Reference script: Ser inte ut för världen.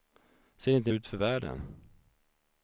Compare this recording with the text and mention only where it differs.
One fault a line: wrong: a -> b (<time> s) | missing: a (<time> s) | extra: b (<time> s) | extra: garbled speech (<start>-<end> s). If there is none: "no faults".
no faults